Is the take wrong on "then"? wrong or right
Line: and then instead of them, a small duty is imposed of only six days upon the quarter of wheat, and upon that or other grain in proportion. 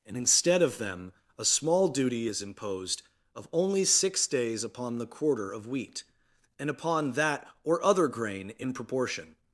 wrong